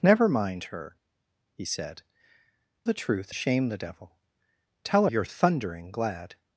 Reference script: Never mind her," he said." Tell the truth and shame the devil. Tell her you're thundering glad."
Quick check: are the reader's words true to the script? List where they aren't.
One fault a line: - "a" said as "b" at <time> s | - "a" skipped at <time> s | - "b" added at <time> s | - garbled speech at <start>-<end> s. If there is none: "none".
- "Tell" skipped at 2.0 s
- "and" skipped at 3.3 s
- "her" skipped at 5.1 s